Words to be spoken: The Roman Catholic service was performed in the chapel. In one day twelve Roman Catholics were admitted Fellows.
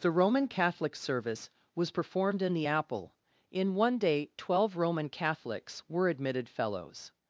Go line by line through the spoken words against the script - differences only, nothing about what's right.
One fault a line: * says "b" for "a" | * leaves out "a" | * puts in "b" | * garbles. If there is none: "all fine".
* says "apple" for "chapel"